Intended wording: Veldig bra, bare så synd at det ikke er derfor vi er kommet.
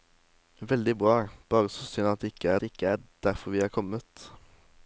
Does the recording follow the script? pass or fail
fail